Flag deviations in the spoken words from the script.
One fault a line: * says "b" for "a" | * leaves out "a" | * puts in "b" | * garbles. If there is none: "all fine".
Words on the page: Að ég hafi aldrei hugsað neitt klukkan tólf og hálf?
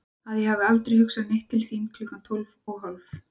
* puts in "til þín"